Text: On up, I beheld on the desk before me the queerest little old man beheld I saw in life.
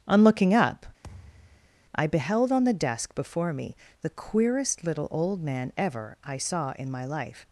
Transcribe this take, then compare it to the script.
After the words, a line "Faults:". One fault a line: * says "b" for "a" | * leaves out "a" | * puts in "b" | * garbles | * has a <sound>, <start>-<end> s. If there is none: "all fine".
On looking up, I beheld on the desk before me the queerest little old man ever I saw in my life.
Faults:
* puts in "looking"
* has a thud, 1.0-1.8 s
* says "ever" for "beheld"
* puts in "my"